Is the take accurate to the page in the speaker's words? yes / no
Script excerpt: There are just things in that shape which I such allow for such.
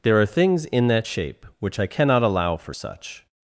no